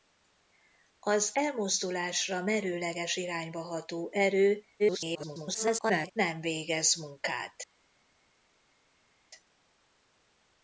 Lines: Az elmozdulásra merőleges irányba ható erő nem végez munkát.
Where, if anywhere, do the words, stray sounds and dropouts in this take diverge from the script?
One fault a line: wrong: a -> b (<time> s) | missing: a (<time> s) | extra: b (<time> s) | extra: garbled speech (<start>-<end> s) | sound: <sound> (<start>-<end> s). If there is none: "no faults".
extra: garbled speech (4.8-6.1 s)